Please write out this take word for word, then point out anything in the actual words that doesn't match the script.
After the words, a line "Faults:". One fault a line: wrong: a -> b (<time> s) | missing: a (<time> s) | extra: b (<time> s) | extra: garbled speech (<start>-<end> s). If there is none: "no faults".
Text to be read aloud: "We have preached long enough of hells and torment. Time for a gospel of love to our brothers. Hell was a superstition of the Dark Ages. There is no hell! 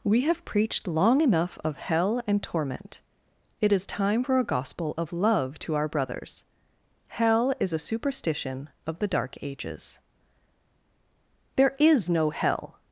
"We have preached long enough of hell and torment. It is time for a gospel of love to our brothers. Hell is a superstition of the Dark Ages. There is no hell!
Faults:
wrong: hells -> hell (1.8 s)
extra: It is (3.6 s)
wrong: was -> is (7.6 s)